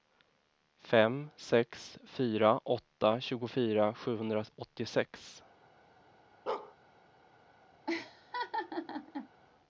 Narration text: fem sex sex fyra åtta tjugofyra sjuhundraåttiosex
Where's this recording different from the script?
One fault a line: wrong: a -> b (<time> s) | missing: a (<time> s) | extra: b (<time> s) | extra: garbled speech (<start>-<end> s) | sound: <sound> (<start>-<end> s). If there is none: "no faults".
missing: sex (2.0 s)
sound: bark (6.5-6.7 s)
sound: laugh (7.9-9.3 s)